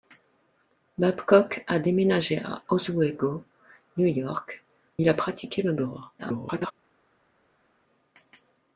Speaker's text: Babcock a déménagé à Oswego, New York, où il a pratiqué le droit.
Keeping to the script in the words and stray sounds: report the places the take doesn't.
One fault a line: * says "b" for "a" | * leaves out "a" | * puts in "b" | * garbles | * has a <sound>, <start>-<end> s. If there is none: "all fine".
* leaves out "où"
* garbles